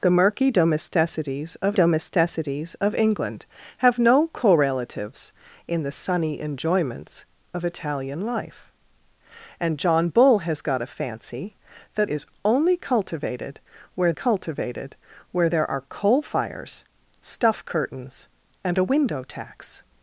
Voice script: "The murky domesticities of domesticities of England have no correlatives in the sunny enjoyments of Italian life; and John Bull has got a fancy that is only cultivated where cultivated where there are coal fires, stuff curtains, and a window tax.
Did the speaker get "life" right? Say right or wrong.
right